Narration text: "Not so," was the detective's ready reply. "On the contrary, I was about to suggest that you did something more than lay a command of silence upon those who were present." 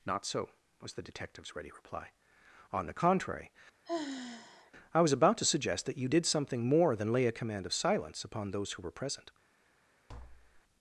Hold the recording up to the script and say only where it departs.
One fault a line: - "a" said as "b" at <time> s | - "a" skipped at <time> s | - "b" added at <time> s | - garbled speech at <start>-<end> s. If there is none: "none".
none